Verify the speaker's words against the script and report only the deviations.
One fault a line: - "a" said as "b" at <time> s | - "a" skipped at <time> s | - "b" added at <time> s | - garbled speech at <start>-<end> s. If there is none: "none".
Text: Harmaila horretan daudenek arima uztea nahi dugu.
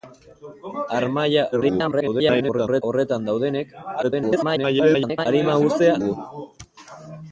- garbled speech at 1.5-2.8 s
- garbled speech at 4.0-5.3 s
- "nahi" skipped at 6.0 s